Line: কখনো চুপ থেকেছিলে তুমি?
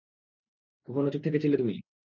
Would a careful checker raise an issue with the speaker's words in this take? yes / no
no